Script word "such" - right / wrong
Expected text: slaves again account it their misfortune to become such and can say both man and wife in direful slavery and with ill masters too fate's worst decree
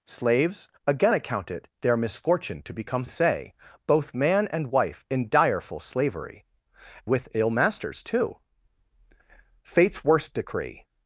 wrong